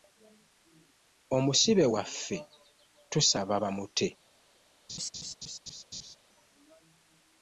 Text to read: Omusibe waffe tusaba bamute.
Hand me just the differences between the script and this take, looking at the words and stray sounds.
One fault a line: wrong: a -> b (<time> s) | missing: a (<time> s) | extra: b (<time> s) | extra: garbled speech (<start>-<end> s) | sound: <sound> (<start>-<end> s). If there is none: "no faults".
sound: laugh (4.9-6.2 s)